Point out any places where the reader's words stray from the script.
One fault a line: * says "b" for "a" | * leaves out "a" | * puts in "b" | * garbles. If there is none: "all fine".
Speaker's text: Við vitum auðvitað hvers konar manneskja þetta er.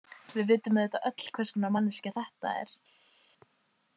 * puts in "öll"